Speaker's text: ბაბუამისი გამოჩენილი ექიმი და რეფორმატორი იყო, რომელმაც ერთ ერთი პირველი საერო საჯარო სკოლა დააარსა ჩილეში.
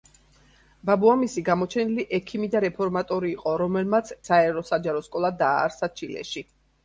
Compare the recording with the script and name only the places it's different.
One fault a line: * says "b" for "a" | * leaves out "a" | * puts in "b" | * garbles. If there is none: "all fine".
* leaves out "ერთ ერთი პირველი"